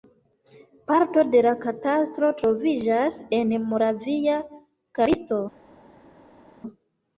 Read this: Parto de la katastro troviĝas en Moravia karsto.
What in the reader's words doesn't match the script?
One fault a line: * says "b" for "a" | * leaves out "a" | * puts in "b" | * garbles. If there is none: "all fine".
all fine